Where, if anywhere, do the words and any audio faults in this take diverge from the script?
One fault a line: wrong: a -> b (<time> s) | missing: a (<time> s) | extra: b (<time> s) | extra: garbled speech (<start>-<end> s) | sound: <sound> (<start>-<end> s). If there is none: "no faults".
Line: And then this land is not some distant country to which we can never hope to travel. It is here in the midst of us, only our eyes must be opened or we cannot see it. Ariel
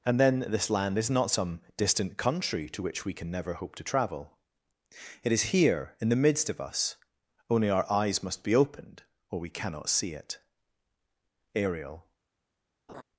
sound: laugh (12.9-13.0 s)